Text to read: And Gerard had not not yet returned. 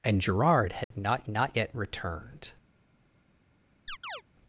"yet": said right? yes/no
yes